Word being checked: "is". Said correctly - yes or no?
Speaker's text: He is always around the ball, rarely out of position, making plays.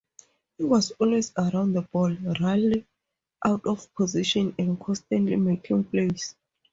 no